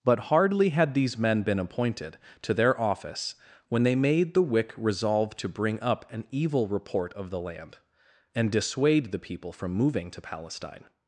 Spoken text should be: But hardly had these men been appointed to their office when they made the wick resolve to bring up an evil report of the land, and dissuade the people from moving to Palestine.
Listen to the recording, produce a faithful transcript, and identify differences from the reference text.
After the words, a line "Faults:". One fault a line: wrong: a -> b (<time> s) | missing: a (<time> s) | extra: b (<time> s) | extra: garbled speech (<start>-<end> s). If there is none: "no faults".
But hardly had these men been appointed to their office when they made the wick resolve to bring up an evil report of the land, and dissuade the people from moving to Palestine.
Faults:
no faults